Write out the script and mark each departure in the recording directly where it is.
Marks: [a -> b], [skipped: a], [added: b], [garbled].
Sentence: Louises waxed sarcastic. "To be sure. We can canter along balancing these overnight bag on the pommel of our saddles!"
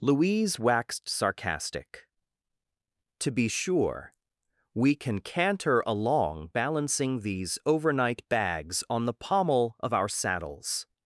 [Louises -> Louise] waxed sarcastic. "To be sure. We can canter along balancing these overnight [bag -> bags] on the pommel of our saddles!"